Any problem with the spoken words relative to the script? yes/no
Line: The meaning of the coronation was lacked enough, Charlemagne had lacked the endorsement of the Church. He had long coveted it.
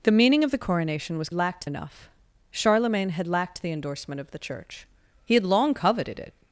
no